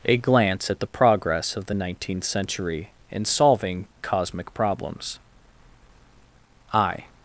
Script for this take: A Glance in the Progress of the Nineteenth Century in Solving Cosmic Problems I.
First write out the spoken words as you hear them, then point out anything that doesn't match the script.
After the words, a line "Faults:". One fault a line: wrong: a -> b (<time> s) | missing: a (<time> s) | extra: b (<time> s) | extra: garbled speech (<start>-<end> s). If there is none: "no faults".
A Glance at the Progress of the Nineteenth Century in Solving Cosmic Problems I.
Faults:
wrong: in -> at (0.7 s)